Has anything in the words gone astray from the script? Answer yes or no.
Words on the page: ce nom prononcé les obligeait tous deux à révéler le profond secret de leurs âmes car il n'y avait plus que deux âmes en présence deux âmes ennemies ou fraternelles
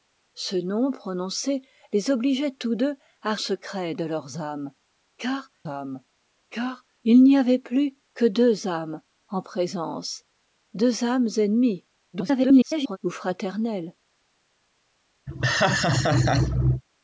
yes